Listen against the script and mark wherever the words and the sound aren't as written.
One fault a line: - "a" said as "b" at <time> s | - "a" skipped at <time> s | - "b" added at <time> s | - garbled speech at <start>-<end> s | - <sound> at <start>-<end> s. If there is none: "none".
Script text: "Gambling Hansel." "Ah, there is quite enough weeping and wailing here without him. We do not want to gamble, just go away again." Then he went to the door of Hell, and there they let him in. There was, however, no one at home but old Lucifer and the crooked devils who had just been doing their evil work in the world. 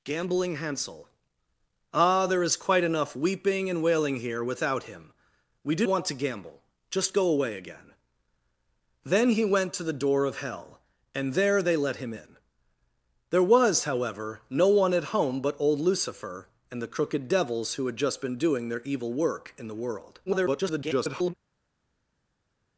- "not" skipped at 5.8 s
- garbled speech at 20.3-21.3 s